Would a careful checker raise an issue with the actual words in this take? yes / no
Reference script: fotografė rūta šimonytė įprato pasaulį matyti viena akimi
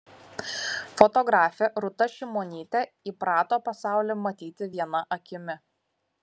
no